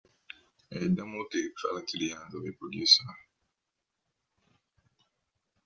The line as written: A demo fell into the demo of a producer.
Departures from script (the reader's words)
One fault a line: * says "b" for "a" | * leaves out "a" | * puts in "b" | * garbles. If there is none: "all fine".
* puts in "tape"
* says "hands" for "demo"